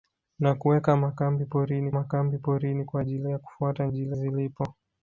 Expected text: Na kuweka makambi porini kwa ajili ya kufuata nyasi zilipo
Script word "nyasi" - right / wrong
wrong